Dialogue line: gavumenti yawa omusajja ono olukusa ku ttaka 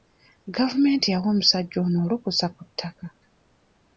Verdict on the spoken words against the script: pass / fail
pass